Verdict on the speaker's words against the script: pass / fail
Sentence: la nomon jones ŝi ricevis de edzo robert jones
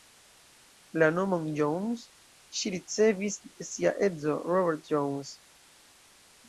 fail